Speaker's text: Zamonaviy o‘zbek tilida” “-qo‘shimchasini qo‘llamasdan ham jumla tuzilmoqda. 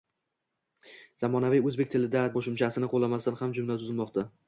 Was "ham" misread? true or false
false